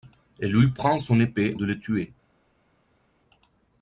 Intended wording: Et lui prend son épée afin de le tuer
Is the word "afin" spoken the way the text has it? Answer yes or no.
no